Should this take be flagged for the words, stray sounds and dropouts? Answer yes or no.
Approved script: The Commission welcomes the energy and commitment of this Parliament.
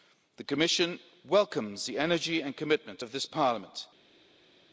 no